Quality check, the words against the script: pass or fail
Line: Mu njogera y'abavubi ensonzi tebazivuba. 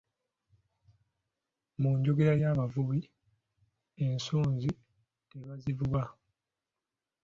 pass